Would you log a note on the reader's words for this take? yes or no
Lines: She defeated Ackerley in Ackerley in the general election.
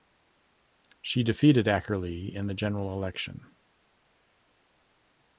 yes